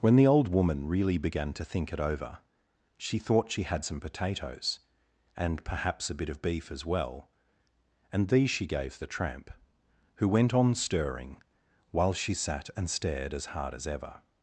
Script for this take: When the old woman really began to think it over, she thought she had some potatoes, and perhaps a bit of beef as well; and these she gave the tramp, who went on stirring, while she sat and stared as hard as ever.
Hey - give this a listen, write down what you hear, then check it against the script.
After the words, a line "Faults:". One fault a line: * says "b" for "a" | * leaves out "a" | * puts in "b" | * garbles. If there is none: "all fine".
When the old woman really began to think it over, she thought she had some potatoes, and perhaps a bit of beef as well; and these she gave the tramp, who went on stirring, while she sat and stared as hard as ever.
Faults:
all fine